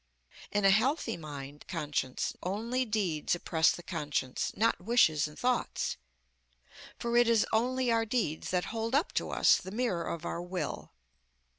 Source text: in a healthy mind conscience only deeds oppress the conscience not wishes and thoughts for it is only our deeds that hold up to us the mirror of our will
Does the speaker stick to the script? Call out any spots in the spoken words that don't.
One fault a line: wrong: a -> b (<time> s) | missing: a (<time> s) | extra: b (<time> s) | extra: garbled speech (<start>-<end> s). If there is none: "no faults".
no faults